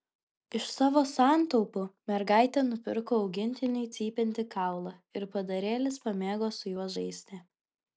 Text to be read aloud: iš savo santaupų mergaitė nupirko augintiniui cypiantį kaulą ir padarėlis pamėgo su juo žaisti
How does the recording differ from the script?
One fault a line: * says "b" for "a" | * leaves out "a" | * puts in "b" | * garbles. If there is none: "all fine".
all fine